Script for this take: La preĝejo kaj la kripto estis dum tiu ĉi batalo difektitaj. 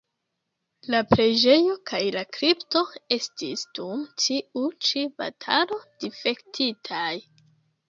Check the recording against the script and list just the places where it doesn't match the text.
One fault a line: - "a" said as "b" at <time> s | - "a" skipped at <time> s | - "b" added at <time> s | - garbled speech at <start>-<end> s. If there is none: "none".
none